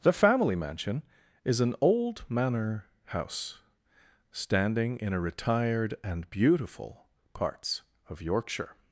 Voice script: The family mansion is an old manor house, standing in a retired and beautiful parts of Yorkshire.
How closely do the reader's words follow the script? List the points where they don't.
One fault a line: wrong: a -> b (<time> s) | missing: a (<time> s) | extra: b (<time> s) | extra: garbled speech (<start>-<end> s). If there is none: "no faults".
no faults